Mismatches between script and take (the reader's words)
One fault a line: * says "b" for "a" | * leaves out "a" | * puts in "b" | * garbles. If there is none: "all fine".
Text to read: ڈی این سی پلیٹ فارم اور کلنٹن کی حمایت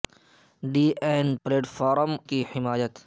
* leaves out "سی"
* leaves out "اور کلنٹن"